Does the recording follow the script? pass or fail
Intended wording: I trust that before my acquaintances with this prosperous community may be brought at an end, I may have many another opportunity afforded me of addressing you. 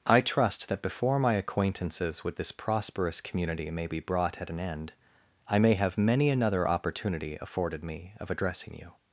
pass